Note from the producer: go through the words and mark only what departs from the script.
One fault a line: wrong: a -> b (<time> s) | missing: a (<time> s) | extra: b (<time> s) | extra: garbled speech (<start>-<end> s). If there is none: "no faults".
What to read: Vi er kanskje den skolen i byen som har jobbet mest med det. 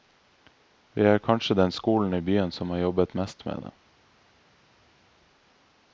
no faults